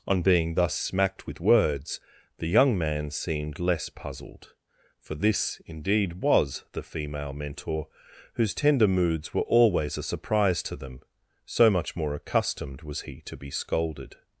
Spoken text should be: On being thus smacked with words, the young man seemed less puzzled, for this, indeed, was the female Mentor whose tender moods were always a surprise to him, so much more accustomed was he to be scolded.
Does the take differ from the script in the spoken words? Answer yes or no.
yes